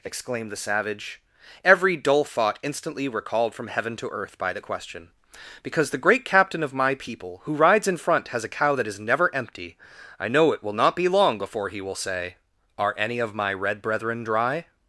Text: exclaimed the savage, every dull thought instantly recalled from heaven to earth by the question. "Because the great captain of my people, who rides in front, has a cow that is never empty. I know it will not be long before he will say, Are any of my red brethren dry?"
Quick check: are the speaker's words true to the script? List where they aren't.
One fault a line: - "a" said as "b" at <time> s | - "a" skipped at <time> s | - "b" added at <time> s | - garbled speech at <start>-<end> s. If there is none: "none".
none